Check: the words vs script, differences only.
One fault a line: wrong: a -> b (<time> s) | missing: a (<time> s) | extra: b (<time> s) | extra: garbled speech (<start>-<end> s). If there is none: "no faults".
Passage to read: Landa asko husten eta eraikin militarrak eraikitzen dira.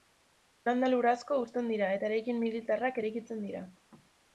extra: lur (0.9 s)
extra: dira (1.7 s)